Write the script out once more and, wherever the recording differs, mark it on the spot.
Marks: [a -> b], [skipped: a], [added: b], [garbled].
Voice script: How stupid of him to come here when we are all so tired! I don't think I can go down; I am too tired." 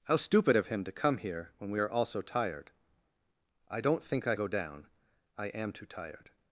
How stupid of him to come here when we are all so tired! I don't think I [skipped: can] go down; I am too tired."